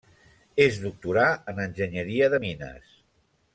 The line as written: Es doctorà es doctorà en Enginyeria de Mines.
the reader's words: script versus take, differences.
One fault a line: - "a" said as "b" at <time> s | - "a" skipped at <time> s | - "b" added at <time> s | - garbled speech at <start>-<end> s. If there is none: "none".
- "es doctorà" skipped at 1.3 s